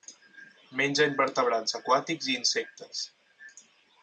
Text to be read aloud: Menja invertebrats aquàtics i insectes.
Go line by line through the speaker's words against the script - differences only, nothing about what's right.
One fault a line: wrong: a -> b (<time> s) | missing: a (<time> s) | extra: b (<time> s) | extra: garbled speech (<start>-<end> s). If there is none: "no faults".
no faults